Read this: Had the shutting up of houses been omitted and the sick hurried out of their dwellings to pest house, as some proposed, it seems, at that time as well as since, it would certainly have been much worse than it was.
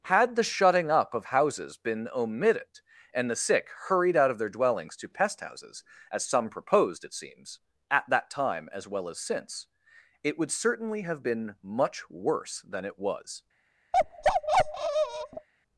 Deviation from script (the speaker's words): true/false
true